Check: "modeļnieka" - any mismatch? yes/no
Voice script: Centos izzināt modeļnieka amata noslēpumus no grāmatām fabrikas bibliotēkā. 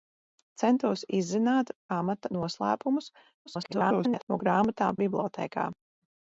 yes